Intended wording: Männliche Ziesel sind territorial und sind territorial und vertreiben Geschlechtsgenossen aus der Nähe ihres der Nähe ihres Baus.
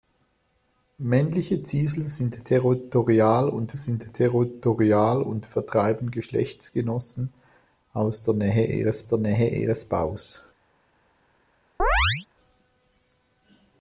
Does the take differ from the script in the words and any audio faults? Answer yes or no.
yes